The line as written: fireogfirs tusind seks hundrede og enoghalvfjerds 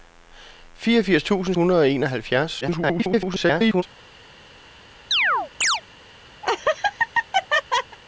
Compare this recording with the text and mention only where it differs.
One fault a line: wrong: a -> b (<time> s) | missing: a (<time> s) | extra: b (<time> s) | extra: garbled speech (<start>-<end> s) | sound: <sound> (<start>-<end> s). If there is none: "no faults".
missing: seks (1.6 s)
extra: garbled speech (2.6-3.8 s)
sound: chirp (5.1-5.8 s)
sound: laugh (6.4-8.0 s)